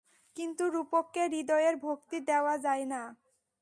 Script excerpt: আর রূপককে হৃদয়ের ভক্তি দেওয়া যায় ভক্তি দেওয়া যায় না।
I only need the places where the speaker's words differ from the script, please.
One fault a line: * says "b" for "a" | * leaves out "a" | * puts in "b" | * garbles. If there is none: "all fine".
* says "কিন্তু" for "আর"
* leaves out "ভক্তি দেওয়া যায়"